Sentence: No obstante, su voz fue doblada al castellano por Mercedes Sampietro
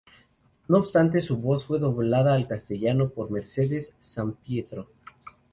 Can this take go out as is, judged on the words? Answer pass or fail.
pass